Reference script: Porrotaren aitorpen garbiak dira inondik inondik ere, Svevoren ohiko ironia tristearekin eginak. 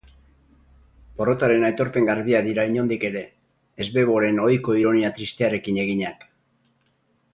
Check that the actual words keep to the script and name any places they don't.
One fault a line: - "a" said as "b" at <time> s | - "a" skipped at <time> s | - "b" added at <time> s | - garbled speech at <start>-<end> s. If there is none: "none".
- "inondik" skipped at 3.0 s